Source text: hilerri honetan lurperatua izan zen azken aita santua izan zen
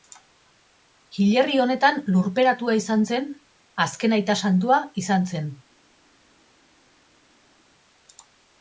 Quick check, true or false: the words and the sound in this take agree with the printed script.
true